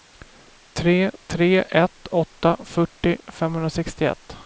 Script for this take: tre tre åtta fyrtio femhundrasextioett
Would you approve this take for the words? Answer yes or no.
no